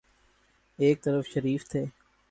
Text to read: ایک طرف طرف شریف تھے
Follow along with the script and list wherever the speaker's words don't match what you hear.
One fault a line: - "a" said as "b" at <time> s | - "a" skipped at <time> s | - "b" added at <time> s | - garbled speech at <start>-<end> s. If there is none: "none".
- "طرف" skipped at 1.3 s